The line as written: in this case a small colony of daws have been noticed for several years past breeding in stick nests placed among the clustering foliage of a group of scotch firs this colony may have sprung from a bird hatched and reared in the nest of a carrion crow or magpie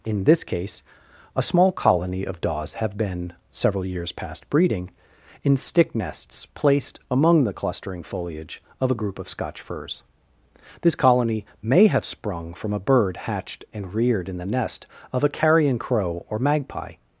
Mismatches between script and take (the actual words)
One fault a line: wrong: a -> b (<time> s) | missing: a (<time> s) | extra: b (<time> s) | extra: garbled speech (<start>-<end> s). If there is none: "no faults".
missing: noticed for (3.3 s)